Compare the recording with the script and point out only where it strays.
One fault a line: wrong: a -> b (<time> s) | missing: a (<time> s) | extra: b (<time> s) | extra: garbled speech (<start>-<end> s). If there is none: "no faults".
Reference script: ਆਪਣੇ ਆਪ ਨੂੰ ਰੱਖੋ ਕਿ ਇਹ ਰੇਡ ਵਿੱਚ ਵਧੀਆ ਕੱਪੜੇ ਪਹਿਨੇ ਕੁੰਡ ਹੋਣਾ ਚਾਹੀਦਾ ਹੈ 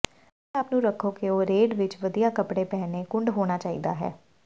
wrong: ਇਹ -> ਉਹ (1.3 s)